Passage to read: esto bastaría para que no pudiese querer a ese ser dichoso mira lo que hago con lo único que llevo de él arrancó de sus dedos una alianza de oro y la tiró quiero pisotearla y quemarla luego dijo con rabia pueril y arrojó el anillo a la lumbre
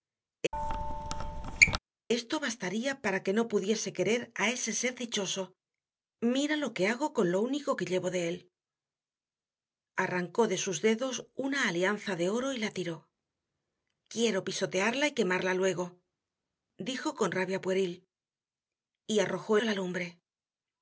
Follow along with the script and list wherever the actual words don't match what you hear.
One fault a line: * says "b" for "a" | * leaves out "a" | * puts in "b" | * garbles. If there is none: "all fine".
* leaves out "el anillo"